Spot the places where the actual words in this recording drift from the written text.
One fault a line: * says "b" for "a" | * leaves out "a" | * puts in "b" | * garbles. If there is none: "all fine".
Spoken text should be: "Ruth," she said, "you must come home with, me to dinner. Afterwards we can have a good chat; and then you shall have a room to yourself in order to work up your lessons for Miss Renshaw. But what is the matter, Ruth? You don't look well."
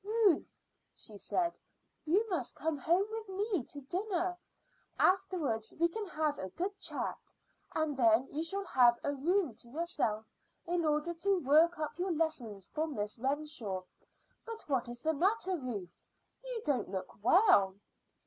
all fine